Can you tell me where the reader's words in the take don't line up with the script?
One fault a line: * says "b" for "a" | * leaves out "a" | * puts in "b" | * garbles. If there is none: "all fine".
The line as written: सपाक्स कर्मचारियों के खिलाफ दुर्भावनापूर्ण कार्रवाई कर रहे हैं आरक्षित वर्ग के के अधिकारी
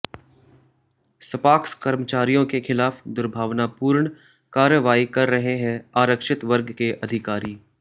* leaves out "के"